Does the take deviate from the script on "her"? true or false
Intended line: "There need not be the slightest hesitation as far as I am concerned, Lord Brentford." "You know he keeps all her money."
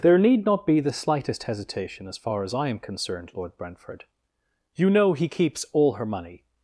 false